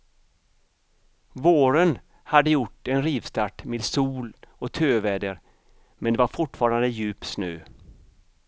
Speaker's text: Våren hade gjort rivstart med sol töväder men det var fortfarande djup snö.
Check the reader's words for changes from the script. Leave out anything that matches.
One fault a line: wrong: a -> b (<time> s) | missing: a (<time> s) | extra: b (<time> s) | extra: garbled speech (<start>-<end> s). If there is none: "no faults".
extra: en (2.9 s)
extra: och (4.5 s)